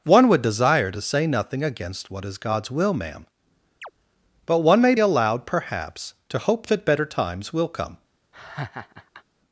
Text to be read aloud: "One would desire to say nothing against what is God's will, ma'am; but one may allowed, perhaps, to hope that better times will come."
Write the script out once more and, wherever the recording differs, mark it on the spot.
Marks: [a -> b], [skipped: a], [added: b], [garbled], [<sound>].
"One would desire to say nothing against what is God's will, ma'am; [chirp] but one may allowed, perhaps, to hope that better times will come." [laugh]